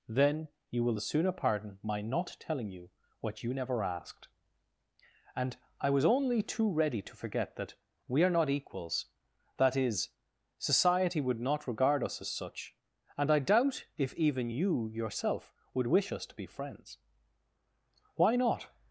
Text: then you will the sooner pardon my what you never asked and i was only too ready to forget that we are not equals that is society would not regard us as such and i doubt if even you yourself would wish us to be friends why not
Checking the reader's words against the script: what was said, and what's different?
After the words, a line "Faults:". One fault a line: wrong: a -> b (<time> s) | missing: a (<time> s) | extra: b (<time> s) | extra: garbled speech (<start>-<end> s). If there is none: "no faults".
then you will the sooner pardon my not telling you what you never asked and i was only too ready to forget that we are not equals that is society would not regard us as such and i doubt if even you yourself would wish us to be friends why not
Faults:
extra: not telling you (2.0 s)